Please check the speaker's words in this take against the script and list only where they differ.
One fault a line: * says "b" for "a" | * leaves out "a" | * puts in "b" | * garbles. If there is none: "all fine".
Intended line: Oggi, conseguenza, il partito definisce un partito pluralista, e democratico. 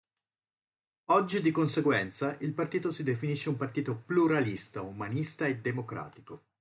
* puts in "di"
* puts in "si"
* puts in "umanista"